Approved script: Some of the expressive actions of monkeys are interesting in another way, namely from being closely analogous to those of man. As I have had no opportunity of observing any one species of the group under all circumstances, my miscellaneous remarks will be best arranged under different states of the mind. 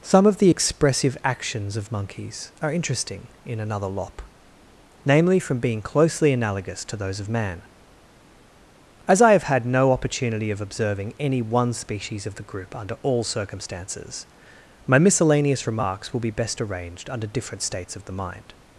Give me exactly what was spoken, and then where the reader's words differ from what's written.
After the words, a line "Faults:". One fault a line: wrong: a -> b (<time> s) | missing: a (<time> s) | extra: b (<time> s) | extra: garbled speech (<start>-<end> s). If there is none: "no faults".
Some of the expressive actions of monkeys are interesting in another lop, namely from being closely analogous to those of man. As I have had no opportunity of observing any one species of the group under all circumstances, my miscellaneous remarks will be best arranged under different states of the mind.
Faults:
wrong: way -> lop (3.9 s)